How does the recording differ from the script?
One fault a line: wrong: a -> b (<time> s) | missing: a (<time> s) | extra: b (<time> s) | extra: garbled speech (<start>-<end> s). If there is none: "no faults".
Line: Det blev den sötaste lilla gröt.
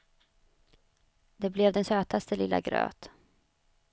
no faults